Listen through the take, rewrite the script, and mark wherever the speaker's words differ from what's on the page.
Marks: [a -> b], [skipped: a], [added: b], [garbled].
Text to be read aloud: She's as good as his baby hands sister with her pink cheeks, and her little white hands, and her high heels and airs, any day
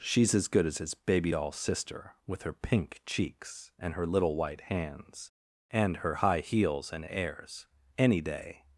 She's as good as his baby [hands -> doll] sister with her pink cheeks, and her little white hands, and her high heels and airs, any day